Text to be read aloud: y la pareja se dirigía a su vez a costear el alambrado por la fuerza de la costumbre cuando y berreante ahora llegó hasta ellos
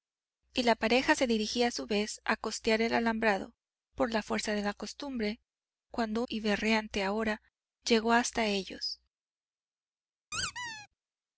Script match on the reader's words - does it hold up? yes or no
yes